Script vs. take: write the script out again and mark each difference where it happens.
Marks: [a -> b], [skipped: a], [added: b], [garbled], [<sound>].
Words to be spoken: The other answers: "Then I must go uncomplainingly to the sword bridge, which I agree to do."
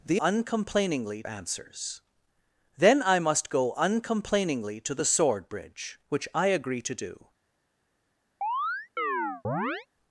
The [other -> uncomplainingly] answers: "Then I must go uncomplainingly to the sword bridge, which I agree to do." [chirp]